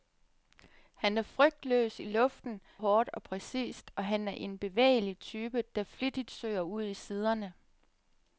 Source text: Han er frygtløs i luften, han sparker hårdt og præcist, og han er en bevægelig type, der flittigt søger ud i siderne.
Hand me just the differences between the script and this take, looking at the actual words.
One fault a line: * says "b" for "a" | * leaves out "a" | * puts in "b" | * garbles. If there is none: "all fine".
* leaves out "han sparker"